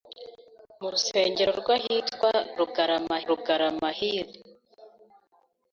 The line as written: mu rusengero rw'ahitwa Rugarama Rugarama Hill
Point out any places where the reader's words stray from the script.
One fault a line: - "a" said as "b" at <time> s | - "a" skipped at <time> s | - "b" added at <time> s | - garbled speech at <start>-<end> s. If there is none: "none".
none